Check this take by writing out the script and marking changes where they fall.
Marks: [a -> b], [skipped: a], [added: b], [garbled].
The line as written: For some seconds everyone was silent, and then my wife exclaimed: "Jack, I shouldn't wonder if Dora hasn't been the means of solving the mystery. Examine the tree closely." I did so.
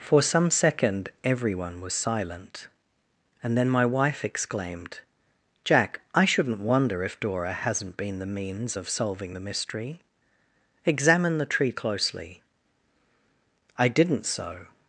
For some [seconds -> second] everyone was silent, and then my wife exclaimed: "Jack, I shouldn't wonder if Dora hasn't been the means of solving the mystery. Examine the tree closely." I [did -> didn't] so.